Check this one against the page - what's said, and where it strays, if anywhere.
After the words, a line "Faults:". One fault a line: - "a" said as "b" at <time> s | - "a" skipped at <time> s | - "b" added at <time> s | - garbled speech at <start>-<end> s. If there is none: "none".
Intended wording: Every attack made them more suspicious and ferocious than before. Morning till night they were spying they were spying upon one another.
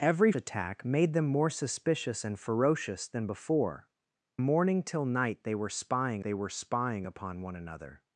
Every attack made them more suspicious and ferocious than before. Morning till night they were spying they were spying upon one another.
Faults:
none